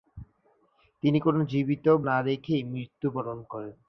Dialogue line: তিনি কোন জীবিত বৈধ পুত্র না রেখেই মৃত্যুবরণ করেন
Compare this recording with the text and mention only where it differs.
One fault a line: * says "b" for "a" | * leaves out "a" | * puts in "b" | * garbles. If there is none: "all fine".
* leaves out "বৈধ পুত্র"